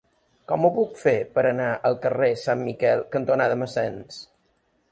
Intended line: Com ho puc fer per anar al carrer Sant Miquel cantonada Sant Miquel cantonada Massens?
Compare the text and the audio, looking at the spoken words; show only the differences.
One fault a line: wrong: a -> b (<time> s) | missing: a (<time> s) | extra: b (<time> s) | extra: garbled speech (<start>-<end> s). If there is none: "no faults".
missing: Sant Miquel cantonada (3.6 s)